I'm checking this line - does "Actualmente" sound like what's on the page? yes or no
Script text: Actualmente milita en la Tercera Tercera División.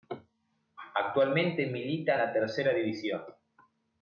yes